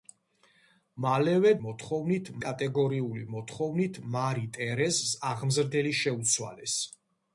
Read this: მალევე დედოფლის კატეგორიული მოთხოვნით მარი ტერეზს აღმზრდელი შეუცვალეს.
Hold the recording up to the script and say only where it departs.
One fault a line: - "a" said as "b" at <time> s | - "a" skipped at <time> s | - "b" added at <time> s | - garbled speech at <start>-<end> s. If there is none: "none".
- "დედოფლის" said as "მოთხოვნით" at 1.7 s